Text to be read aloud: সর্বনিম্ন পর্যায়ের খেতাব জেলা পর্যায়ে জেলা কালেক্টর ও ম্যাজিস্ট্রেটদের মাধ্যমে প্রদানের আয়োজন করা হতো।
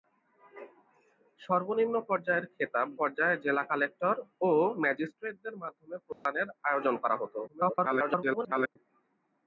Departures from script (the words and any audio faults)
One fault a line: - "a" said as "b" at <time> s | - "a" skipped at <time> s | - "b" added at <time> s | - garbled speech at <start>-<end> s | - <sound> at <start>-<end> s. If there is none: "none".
- "জেলা" skipped at 2.9 s
- dropout at 6.1-6.3 s
- garbled speech at 7.5-8.8 s